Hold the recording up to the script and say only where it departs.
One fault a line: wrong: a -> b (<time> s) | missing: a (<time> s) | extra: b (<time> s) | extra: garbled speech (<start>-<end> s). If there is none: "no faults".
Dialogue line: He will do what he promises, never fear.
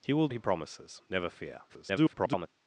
missing: do what (0.3 s)
extra: garbled speech (1.7-2.5 s)